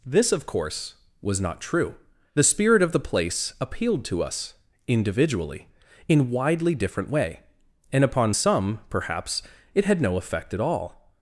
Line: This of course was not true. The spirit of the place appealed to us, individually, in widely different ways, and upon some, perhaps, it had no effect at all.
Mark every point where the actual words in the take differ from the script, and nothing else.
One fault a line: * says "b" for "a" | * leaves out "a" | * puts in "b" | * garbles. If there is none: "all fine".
* says "way" for "ways"